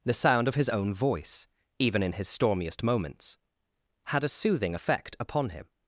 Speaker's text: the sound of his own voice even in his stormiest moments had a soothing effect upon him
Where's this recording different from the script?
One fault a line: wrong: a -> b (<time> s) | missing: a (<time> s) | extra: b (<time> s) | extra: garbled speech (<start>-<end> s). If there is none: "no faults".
no faults